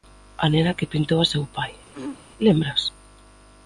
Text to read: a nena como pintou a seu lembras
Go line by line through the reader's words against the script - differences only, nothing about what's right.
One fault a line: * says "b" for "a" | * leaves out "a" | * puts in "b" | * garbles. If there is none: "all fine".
* says "que" for "como"
* puts in "pai"